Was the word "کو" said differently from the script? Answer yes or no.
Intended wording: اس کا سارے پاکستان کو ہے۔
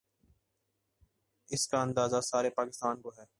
no